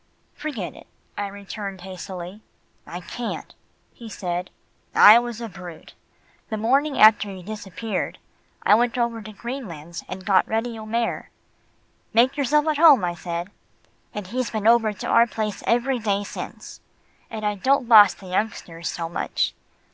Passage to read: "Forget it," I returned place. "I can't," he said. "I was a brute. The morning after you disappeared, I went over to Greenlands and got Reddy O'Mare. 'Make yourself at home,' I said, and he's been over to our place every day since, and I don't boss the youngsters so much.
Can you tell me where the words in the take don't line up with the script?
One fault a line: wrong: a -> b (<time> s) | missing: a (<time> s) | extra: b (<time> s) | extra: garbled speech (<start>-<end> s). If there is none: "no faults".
wrong: place -> hastily (1.8 s)